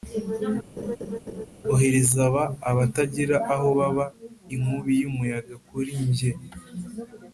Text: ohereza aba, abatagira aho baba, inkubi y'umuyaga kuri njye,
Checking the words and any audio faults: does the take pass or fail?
fail